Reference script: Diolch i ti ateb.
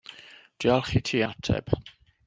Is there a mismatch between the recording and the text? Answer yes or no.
no